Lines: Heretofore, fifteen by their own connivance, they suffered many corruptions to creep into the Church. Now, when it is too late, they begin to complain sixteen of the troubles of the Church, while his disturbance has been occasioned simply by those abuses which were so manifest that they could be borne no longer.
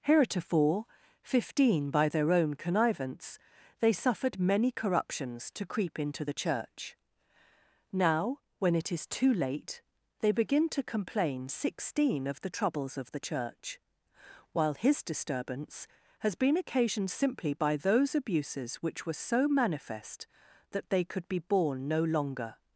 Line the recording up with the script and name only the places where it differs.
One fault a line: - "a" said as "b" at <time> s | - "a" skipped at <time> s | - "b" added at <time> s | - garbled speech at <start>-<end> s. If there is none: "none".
none